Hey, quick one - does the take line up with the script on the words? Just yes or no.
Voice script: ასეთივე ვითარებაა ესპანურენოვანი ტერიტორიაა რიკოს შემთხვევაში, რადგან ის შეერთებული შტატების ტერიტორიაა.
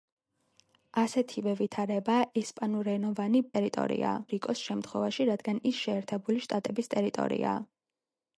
yes